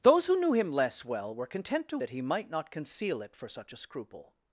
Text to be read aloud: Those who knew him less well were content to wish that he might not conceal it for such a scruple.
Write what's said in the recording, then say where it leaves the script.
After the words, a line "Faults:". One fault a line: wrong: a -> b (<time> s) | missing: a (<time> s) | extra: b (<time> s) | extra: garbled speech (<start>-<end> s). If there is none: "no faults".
Those who knew him less well were content to that he might not conceal it for such a scruple.
Faults:
missing: wish (2.0 s)